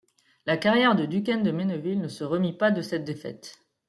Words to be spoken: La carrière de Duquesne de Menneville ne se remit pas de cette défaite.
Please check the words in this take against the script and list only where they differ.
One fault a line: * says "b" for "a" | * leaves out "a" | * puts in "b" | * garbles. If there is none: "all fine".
all fine